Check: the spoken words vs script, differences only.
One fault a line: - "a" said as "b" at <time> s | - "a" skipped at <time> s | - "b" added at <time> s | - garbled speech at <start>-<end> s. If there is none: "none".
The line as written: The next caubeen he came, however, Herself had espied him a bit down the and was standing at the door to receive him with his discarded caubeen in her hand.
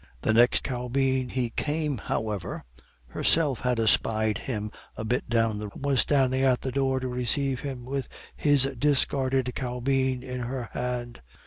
none